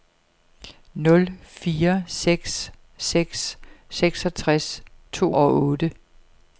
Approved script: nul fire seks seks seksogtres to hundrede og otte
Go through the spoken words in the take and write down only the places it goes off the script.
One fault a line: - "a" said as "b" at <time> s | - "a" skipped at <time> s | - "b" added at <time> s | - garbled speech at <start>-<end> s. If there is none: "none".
- "hundrede" skipped at 5.3 s